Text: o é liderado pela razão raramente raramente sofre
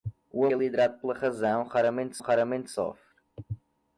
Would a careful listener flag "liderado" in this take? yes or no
no